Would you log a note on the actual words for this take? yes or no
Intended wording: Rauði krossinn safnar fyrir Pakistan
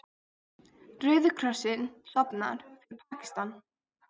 no